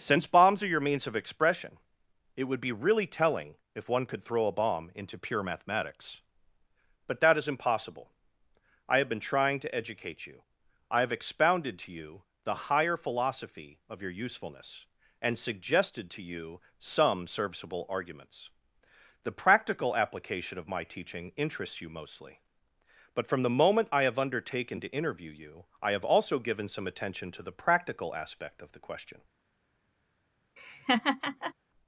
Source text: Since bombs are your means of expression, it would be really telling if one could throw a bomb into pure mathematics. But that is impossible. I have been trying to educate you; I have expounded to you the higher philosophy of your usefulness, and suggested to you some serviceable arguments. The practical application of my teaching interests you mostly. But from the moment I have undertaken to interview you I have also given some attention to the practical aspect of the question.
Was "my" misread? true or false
false